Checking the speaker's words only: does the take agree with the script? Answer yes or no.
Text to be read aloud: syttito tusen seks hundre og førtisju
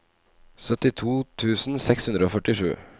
yes